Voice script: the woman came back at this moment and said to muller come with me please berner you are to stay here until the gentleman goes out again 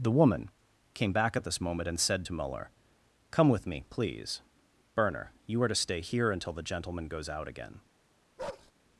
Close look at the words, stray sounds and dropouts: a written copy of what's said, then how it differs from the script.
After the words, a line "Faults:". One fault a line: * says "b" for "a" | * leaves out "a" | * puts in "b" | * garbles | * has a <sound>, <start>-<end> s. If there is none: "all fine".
the woman came back at this moment and said to muller come with me please berner you are to stay here until the gentleman goes out again
Faults:
* has a bark, 8.4-8.7 s